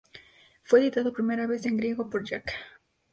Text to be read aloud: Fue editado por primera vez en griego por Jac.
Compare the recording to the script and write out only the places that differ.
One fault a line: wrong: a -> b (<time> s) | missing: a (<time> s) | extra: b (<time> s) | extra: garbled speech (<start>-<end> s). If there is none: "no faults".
missing: por (1.1 s)